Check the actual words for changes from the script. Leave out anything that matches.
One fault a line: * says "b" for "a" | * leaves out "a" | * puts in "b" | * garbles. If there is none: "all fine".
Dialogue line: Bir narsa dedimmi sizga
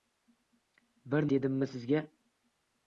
* leaves out "narsa"